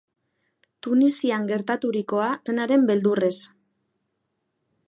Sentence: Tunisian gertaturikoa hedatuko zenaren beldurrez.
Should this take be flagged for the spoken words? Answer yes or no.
yes